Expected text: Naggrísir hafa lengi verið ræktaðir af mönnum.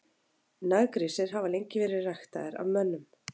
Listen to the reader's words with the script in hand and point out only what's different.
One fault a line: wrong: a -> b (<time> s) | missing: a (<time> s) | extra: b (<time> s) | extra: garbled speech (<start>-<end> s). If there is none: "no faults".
no faults